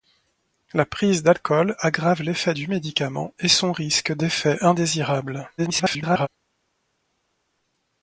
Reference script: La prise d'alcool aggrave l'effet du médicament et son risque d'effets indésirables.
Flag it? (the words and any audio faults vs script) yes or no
yes